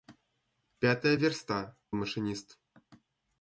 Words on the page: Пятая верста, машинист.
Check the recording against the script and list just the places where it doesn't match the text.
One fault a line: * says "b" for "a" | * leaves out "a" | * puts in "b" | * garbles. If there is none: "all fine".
all fine